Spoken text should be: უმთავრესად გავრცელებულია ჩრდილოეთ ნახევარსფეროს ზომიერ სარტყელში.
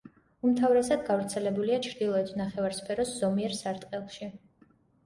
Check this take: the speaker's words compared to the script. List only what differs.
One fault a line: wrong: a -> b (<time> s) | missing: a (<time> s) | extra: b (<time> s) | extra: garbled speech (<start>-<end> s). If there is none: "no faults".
no faults